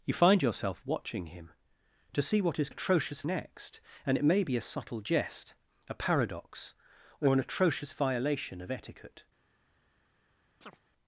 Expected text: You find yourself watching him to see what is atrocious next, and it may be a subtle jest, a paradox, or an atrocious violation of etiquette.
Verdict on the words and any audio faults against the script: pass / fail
fail